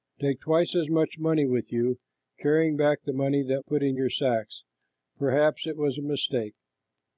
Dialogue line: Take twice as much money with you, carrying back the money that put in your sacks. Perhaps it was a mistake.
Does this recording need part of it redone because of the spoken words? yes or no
no